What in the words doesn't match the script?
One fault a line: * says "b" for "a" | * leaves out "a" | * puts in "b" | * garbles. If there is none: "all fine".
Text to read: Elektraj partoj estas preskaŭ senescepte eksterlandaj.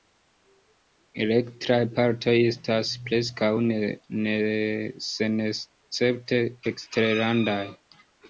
all fine